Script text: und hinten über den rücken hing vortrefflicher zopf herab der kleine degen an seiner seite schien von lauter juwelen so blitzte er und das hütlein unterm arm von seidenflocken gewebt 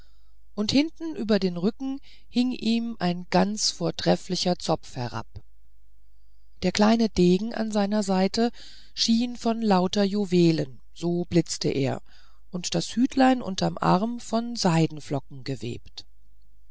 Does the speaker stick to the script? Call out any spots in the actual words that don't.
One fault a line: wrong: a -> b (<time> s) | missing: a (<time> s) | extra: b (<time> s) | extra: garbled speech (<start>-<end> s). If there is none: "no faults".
extra: ihm ein ganz (2.5 s)